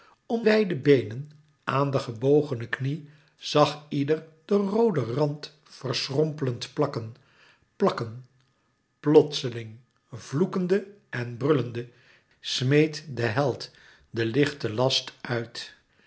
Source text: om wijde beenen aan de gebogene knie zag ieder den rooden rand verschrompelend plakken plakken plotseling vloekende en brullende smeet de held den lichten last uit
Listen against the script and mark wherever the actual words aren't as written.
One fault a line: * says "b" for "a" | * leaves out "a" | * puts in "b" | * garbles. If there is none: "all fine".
all fine